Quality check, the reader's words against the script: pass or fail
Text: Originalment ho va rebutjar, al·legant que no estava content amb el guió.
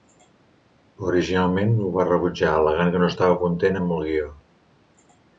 pass